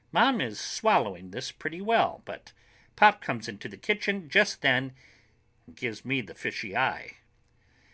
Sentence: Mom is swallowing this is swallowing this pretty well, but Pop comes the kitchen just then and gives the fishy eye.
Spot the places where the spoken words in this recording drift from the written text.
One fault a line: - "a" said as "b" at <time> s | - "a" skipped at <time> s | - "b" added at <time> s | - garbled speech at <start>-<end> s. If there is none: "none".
- "is swallowing this" skipped at 1.5 s
- "into" added at 3.5 s
- "me" added at 6.0 s